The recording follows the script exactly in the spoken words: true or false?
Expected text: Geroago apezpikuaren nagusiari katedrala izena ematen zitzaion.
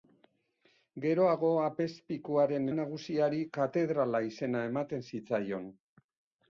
true